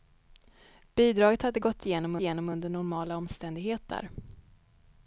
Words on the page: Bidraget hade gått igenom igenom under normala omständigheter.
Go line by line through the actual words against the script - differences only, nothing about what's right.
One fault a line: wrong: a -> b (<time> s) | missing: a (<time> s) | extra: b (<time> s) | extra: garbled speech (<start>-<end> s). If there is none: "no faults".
no faults